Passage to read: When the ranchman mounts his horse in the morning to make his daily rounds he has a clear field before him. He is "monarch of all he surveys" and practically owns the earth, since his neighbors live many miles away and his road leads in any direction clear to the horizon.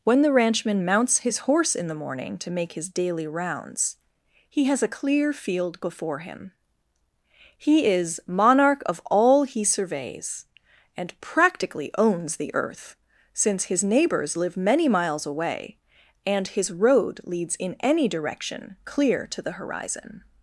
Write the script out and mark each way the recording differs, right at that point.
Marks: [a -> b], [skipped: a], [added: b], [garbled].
When the ranchman mounts his horse in the morning to make his daily rounds he has a clear field before him. He is "monarch of all he surveys" and practically owns the earth, since his neighbors live many miles away and his road leads in any direction clear to the horizon.